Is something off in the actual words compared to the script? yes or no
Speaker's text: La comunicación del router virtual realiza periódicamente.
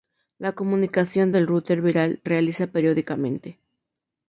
no